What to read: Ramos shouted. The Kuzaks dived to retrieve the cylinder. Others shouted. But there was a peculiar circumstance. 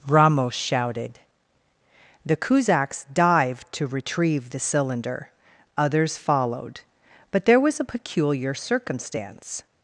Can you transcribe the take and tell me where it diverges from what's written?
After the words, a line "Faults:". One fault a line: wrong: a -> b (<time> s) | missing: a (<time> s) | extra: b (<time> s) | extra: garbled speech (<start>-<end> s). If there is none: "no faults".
Ramos shouted. The Kuzaks dived to retrieve the cylinder. Others followed. But there was a peculiar circumstance.
Faults:
wrong: shouted -> followed (6.2 s)